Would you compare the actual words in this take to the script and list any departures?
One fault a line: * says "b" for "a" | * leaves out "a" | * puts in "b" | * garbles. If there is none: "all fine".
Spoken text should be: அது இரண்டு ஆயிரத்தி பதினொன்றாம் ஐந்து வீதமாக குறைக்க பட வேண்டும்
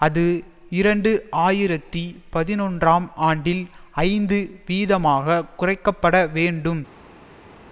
* puts in "ஆண்டில்"